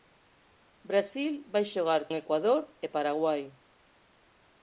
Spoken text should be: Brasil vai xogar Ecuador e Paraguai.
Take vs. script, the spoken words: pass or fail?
pass